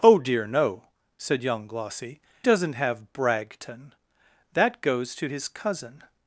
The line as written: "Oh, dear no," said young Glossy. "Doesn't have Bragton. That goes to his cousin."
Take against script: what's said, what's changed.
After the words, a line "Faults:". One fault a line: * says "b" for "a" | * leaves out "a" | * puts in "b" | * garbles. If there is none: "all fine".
"Oh, dear no," said young Glossy. "Doesn't have Bragton. That goes to his cousin."
Faults:
all fine